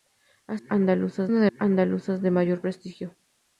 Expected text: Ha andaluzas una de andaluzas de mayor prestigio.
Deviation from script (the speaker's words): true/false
false